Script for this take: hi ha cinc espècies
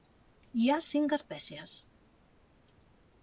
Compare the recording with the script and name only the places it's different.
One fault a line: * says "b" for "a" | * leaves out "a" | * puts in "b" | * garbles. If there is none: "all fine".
all fine